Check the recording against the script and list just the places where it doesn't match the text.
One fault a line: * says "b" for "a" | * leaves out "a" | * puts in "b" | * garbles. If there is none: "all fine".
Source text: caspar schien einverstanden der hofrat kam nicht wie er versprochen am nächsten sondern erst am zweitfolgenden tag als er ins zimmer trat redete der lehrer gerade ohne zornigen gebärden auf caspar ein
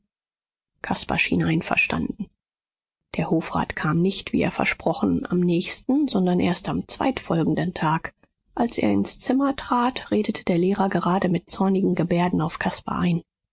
* says "mit" for "ohne"